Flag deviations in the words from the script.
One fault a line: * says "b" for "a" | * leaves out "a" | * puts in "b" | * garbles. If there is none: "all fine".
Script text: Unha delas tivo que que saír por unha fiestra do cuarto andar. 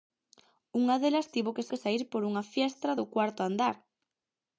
all fine